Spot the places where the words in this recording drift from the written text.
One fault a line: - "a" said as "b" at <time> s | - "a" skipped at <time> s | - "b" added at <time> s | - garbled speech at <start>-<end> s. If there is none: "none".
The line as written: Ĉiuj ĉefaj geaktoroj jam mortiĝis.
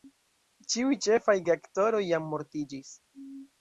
none